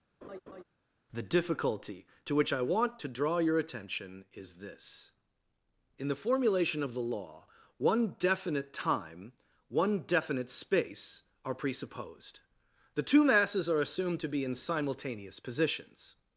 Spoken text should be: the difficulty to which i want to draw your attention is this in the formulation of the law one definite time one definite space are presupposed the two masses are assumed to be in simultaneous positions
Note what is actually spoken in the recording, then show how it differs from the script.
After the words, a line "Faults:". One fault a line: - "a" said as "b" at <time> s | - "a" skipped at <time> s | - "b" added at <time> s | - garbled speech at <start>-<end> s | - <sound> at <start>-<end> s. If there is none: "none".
the difficulty to which i want to draw your attention is this in the formulation of the law one definite time one definite space are presupposed the two masses are assumed to be in simultaneous positions
Faults:
- laugh at 0.2-0.6 s